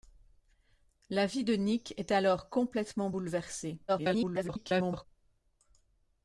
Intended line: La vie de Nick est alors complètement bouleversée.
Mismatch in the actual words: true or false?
true